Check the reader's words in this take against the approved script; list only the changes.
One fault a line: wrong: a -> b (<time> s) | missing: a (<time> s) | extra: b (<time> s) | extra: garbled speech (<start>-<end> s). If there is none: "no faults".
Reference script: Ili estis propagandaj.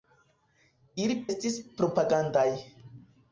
no faults